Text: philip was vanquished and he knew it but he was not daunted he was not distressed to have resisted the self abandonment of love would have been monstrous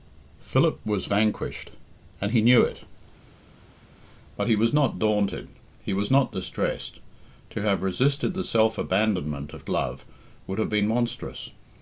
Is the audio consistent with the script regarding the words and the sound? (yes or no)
yes